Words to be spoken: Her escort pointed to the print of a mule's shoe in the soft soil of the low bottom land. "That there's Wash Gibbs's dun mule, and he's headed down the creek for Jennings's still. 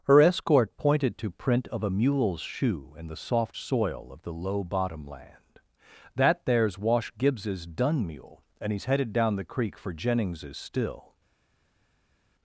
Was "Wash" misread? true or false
false